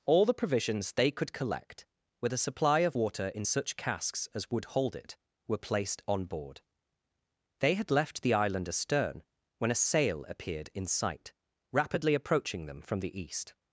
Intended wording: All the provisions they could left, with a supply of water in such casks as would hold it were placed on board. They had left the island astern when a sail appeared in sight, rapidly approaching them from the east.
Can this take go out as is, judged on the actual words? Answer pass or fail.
fail